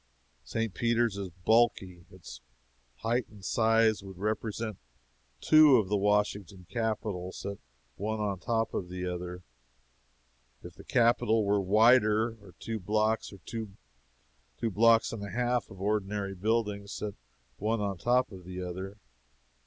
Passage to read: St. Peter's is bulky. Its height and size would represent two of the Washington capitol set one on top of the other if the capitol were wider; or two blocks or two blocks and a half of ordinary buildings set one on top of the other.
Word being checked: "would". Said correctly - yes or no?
yes